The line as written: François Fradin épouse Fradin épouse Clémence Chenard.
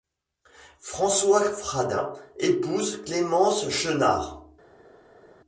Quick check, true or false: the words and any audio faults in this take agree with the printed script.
false